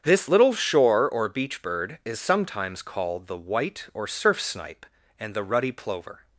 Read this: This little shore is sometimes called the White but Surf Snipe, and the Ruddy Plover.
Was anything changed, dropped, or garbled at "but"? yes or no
yes